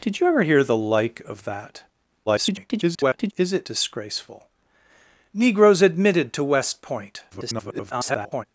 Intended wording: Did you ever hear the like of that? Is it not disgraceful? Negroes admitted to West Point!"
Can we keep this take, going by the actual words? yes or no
no